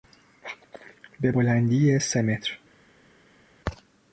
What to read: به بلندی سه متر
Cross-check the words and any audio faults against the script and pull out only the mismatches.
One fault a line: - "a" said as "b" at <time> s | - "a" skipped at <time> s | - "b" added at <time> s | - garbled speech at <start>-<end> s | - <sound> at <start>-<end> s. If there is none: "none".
none